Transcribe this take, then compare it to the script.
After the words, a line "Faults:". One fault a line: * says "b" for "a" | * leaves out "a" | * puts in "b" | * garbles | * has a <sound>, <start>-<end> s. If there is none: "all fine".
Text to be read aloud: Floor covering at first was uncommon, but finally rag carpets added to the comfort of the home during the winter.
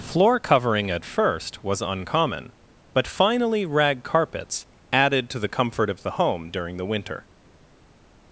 Floor covering at first was uncommon, but finally rag carpets added to the comfort of the home during the winter.
Faults:
all fine